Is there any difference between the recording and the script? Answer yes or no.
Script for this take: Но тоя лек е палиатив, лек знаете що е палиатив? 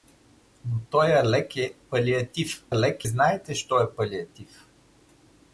no